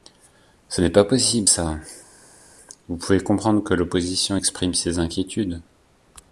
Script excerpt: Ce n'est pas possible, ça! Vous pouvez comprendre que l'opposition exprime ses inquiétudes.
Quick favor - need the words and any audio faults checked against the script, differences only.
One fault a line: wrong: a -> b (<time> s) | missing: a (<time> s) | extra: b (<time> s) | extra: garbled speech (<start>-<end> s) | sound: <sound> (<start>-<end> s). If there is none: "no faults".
no faults